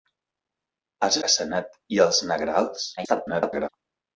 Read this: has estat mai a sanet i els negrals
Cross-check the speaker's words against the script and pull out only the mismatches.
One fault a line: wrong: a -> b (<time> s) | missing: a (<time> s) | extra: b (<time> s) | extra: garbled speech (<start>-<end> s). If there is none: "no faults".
missing: estat mai (1.2 s)
extra: garbled speech (3.0-3.7 s)